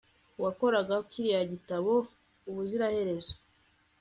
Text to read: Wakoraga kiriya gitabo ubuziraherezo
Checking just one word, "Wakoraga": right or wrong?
right